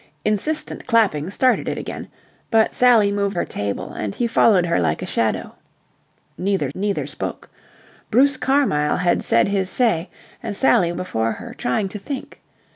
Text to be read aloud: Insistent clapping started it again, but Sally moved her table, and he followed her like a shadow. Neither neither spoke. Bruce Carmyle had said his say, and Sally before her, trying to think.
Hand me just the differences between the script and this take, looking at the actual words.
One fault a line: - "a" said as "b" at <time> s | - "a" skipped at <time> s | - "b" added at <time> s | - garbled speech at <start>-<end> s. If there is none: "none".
none